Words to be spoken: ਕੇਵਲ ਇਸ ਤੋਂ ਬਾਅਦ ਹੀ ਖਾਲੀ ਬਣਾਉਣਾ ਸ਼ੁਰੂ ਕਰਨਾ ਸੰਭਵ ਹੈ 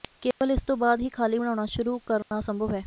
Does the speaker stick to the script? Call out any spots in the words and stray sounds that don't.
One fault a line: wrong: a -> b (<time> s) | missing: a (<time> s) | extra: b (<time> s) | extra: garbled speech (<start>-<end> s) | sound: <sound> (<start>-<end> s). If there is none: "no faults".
sound: dropout (0.3-0.4 s)
sound: dropout (2.2-2.3 s)